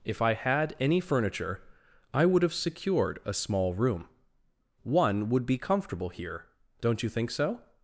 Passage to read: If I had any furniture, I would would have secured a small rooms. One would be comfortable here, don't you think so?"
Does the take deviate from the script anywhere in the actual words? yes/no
yes